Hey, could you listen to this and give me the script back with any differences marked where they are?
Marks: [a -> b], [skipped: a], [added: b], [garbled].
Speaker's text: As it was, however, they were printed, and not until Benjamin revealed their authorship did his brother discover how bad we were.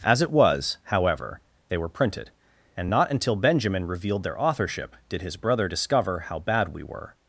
As it was, however, they were printed, and not until Benjamin revealed their authorship did his brother discover how bad we were.